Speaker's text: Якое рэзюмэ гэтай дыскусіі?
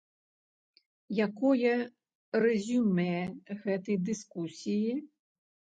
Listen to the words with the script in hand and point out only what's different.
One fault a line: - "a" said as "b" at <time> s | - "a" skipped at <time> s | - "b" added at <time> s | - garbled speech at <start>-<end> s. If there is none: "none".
none